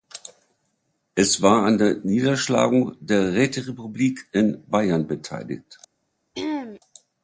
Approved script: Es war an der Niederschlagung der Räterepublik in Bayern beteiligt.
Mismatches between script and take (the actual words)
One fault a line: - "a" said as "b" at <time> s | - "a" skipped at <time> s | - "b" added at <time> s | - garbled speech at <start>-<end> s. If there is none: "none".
none